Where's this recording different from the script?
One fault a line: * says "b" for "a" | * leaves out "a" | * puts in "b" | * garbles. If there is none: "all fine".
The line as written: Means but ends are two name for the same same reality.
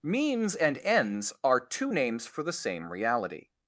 * says "and" for "but"
* says "names" for "name"
* leaves out "same"